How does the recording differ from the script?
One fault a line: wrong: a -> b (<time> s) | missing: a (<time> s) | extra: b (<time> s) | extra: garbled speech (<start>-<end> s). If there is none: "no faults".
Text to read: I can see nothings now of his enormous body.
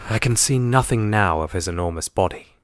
wrong: nothings -> nothing (0.6 s)